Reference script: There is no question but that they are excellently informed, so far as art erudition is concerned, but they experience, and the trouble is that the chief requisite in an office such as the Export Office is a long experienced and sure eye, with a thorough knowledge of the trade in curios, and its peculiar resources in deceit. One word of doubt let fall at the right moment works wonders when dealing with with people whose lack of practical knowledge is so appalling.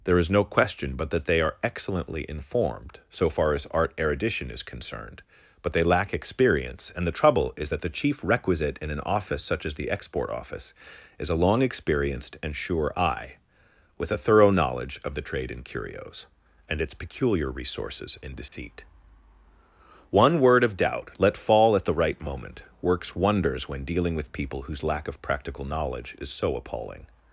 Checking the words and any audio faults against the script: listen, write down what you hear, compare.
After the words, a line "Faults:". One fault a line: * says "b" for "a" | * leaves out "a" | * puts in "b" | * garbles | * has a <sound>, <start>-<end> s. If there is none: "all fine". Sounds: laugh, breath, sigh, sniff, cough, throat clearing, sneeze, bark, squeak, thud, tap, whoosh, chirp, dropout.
There is no question but that they are excellently informed, so far as art erudition is concerned, but they lack experience, and the trouble is that the chief requisite in an office such as the Export Office is a long experienced and sure eye, with a thorough knowledge of the trade in curios, and its peculiar resources in deceit. One word of doubt let fall at the right moment works wonders when dealing with people whose lack of practical knowledge is so appalling.
Faults:
* puts in "lack"
* has a dropout, 18.5-18.5 s
* leaves out "with"